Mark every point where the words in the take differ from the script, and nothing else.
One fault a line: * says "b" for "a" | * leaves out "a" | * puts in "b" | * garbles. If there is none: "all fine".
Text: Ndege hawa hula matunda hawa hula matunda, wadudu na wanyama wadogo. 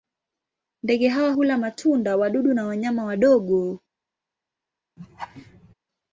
* leaves out "hawa hula matunda"